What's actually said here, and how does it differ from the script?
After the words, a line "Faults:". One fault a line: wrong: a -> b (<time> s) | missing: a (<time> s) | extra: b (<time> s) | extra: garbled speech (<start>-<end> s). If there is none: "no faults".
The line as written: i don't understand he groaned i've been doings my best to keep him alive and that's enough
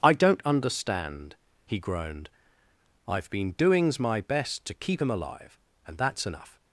i don't understand he groaned i've been doings my best to keep him alive and that's enough
Faults:
no faults